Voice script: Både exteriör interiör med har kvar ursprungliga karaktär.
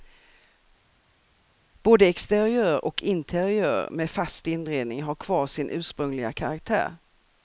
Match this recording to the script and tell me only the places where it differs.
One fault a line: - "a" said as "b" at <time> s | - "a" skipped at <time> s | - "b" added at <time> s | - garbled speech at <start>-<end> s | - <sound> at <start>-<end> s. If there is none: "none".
- "och" added at 2.8 s
- "fast inredning" added at 4.1 s
- "sin" added at 5.5 s